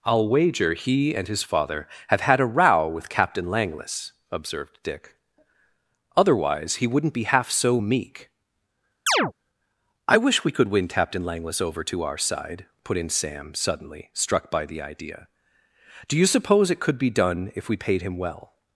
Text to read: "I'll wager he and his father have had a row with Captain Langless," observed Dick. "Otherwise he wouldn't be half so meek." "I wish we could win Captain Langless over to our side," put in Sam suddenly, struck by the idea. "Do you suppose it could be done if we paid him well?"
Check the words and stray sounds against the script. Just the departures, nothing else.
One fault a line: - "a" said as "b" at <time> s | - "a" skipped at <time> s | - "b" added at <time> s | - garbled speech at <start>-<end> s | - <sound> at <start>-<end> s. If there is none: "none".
- chirp at 9.1-9.3 s